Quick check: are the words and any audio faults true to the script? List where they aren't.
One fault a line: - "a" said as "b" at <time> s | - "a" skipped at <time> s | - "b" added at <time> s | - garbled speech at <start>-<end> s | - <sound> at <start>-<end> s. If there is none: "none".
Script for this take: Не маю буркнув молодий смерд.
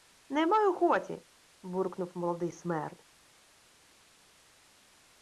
- "хоті" added at 0.7 s